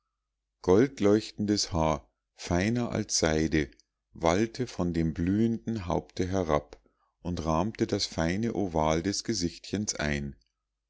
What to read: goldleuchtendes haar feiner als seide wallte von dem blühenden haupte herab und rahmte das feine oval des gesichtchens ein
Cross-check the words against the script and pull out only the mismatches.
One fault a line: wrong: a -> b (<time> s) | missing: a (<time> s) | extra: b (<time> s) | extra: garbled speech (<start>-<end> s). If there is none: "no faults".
no faults